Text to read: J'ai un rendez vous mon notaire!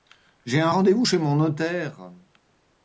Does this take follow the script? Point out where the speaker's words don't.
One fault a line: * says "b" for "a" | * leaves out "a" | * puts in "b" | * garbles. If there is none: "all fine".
* puts in "chez"